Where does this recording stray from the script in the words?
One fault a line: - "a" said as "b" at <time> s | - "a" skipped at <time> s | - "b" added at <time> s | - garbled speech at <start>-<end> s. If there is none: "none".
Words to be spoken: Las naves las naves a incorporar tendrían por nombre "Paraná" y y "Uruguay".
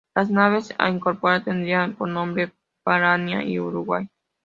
- "las naves" skipped at 0.7 s
- "y" skipped at 3.6 s